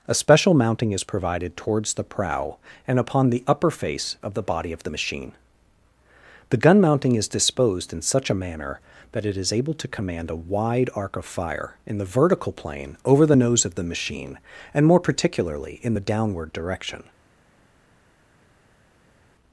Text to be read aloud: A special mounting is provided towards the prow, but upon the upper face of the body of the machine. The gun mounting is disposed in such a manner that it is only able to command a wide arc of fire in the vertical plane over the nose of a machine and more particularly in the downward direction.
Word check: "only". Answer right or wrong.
wrong